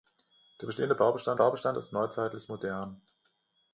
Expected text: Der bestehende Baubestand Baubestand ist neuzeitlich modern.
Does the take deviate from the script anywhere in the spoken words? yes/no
no